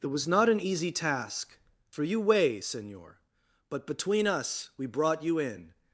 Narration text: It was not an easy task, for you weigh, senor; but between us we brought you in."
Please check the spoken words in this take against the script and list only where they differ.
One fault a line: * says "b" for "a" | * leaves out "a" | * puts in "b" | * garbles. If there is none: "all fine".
all fine